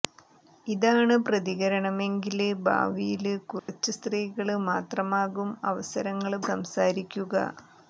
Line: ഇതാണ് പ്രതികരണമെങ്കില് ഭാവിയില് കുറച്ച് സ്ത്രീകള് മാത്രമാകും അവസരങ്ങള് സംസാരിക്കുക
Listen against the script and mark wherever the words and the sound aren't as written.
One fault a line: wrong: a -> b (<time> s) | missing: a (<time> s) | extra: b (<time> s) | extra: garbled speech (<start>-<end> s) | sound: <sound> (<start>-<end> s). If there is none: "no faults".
sound: dropout (3.6-3.7 s)